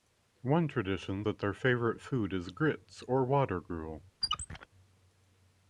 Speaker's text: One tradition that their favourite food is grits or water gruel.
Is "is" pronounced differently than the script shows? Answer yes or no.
no